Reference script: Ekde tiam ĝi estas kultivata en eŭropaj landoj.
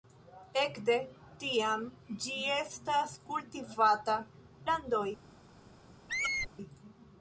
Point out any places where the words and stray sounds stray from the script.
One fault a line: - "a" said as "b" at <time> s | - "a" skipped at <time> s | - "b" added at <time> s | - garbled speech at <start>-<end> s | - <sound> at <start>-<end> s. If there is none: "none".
- "en eŭropaj" skipped at 4.2 s
- squeak at 6.1-6.5 s